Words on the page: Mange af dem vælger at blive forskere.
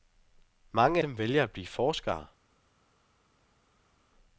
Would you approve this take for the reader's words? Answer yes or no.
no